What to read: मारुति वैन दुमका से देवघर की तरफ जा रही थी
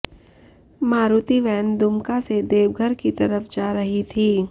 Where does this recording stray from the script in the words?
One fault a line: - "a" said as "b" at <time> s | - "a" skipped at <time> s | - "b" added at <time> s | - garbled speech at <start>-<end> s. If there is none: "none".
none